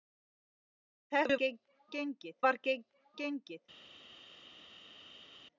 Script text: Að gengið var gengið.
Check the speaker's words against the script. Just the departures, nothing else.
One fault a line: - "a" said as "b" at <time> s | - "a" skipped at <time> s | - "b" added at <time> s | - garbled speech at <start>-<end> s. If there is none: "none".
none